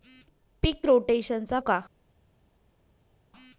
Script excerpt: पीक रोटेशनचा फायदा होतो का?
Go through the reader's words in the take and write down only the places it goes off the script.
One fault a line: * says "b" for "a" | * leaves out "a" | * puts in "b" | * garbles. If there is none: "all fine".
* leaves out "फायदा होतो"